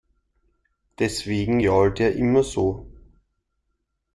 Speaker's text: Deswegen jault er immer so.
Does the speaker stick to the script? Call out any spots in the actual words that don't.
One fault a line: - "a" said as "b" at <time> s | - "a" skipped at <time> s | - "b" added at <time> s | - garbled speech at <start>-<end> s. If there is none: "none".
none